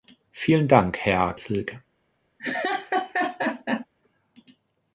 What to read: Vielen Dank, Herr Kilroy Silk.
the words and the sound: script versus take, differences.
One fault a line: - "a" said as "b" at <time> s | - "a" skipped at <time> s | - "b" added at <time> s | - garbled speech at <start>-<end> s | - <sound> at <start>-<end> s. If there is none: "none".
- "Kilroy" skipped at 1.4 s
- laugh at 2.4-3.9 s